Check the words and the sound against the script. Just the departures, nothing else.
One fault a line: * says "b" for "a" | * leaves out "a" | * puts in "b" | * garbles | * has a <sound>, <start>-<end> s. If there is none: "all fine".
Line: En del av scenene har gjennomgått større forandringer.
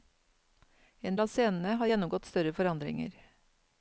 * leaves out "del"